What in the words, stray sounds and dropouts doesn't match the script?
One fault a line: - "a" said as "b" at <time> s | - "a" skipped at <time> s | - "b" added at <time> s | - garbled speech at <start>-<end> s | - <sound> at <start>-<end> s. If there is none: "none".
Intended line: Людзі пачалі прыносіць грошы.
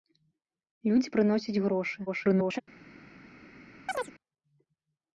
- "пачалі" skipped at 1.1 s
- garbled speech at 2.1-2.6 s
- chirp at 3.9-4.1 s